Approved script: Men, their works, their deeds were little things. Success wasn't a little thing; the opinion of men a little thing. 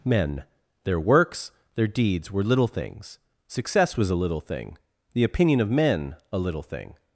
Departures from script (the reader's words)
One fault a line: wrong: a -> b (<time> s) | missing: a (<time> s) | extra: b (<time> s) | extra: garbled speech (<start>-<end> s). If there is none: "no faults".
wrong: wasn't -> was (4.0 s)